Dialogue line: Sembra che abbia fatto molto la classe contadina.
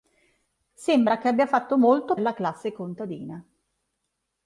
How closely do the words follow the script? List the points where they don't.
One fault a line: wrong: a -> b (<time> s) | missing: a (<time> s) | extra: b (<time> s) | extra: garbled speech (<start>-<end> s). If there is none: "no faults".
no faults